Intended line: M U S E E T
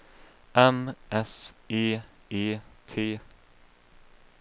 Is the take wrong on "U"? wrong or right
wrong